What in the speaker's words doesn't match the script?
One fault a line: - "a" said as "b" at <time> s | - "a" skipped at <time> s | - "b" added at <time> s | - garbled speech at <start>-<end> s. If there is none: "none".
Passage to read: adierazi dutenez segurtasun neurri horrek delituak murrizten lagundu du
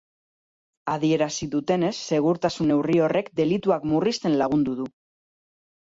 none